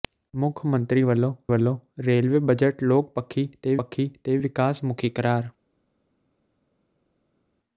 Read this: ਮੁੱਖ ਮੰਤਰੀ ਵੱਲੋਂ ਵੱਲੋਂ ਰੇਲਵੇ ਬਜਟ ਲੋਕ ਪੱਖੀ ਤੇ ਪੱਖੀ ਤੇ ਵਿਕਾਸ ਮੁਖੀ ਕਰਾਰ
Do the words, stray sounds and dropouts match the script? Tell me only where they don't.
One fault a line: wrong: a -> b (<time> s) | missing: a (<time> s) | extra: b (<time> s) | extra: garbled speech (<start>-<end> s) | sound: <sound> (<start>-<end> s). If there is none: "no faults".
no faults